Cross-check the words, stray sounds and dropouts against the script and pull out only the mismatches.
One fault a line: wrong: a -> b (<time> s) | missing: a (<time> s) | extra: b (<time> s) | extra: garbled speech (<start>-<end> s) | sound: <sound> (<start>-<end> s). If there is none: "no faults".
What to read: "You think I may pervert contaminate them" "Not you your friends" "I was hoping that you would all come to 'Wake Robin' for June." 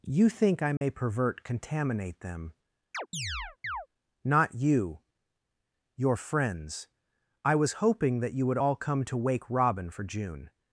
sound: dropout (0.8-0.8 s)
sound: chirp (2.9-3.9 s)